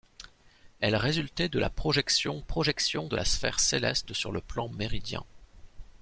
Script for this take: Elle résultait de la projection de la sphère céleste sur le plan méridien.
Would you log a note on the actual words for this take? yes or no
yes